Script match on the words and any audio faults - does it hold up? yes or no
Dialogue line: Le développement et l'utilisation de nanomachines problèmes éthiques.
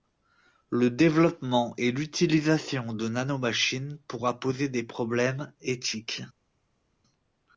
no